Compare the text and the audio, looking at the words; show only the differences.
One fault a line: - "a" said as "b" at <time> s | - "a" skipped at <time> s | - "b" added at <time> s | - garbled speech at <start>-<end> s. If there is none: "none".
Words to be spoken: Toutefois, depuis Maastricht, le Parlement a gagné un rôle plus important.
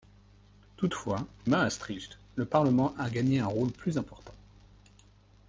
- "depuis" skipped at 1.3 s